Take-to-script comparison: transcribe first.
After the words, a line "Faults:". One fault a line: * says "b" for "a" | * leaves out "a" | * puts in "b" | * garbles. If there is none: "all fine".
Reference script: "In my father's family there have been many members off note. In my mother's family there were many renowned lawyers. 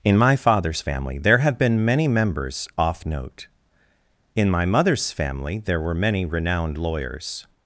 "In my father's family there have been many members off note. In my mother's family there were many renowned lawyers.
Faults:
all fine